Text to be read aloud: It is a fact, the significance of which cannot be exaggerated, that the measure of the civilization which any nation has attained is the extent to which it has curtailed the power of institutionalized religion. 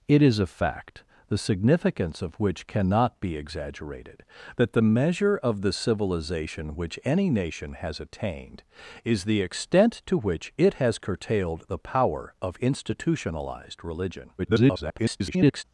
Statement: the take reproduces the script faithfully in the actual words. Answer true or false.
false